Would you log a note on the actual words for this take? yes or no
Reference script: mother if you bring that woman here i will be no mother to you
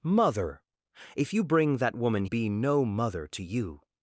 yes